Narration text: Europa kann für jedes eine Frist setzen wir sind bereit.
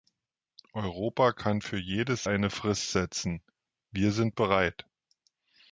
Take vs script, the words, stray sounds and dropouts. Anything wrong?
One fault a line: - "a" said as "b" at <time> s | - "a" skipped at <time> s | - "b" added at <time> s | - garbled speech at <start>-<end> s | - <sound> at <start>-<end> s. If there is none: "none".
none